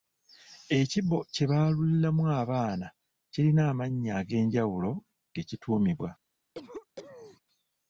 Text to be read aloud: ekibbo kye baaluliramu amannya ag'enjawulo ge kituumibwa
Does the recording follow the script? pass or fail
fail